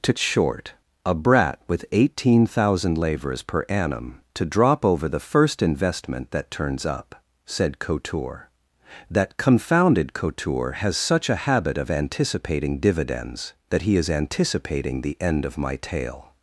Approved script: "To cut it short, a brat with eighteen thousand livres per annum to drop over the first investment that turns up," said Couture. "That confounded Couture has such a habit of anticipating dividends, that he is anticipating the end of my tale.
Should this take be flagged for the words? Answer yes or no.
yes